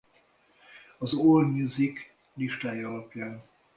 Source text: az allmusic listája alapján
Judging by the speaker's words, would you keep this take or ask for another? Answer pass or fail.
pass